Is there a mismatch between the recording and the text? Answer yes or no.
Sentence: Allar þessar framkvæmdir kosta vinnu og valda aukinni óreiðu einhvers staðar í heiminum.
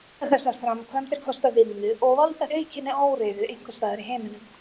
no